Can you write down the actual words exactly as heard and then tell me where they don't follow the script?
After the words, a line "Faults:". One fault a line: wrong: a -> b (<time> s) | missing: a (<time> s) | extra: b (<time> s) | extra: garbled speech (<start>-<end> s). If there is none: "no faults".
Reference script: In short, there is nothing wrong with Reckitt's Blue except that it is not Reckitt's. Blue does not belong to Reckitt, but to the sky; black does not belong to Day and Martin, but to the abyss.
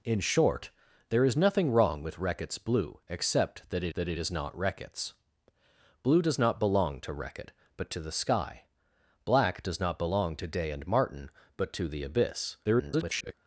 In short, there is nothing wrong with Reckitt's Blue except that it that it is not Reckitt's. Blue does not belong to Reckitt, but to the sky; black does not belong to Day and Martin, but to the abyss. [garbled]
Faults:
extra: that it (3.9 s)
extra: garbled speech (12.6-13.3 s)